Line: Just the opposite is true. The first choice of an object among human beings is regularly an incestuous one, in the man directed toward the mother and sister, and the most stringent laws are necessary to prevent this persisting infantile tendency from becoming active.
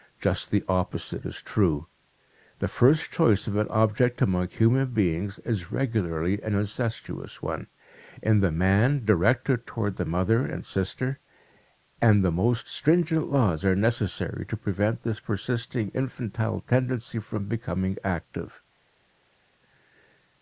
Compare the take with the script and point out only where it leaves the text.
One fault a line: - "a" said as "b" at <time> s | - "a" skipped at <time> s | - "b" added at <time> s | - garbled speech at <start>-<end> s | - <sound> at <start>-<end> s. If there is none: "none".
none